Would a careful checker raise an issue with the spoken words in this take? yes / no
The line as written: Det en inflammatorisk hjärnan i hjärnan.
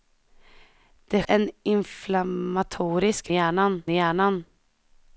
no